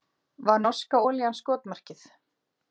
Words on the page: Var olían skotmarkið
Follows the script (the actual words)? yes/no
no